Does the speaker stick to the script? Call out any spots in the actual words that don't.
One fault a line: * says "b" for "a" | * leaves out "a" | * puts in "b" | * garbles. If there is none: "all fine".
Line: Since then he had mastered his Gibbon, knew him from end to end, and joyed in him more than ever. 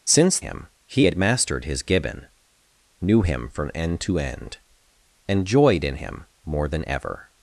* says "him" for "then"